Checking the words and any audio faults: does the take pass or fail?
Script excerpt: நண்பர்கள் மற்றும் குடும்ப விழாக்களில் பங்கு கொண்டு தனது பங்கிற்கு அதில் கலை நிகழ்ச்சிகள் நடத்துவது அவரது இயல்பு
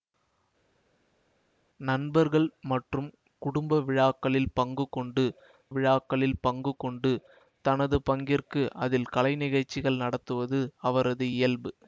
fail